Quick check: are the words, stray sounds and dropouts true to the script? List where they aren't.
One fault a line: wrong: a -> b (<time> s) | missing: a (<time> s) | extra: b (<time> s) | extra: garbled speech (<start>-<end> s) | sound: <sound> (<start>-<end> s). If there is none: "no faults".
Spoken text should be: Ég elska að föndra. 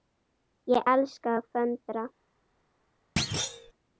sound: thud (3.2-3.7 s)